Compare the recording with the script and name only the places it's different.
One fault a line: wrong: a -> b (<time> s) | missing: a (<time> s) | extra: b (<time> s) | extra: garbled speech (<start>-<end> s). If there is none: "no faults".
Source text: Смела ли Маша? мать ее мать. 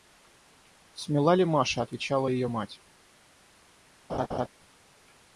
wrong: мать -> отвечала (1.8 s)